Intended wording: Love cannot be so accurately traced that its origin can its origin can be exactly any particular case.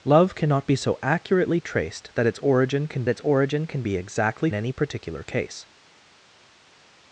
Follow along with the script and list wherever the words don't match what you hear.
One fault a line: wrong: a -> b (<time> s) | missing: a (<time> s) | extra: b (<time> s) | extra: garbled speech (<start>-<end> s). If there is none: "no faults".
no faults